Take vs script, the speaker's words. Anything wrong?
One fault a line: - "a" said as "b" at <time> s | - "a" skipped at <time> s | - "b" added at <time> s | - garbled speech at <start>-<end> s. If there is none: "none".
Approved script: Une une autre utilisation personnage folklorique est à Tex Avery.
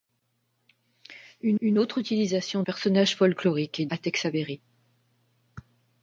none